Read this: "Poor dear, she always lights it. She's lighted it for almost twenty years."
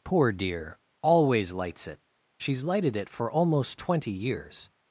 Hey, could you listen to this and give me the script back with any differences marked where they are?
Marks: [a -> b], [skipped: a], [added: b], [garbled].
"Poor dear, [skipped: she] always lights it. She's lighted it for almost twenty years."